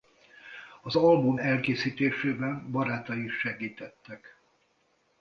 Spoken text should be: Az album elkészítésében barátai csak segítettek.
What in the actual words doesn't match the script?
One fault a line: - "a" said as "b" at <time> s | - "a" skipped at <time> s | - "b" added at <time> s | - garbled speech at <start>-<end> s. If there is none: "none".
- "csak" said as "is" at 3.2 s